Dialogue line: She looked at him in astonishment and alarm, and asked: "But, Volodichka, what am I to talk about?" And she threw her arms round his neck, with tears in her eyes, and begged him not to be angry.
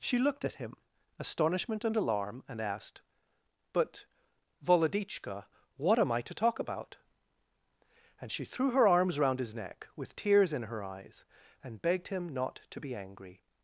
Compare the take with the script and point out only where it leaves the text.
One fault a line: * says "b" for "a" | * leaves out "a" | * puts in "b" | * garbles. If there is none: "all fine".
* leaves out "in"